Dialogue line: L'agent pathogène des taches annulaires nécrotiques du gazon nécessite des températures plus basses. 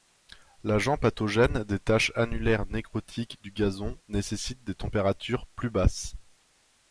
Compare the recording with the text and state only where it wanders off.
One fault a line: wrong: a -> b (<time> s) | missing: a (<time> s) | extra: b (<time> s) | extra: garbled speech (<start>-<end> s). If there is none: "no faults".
no faults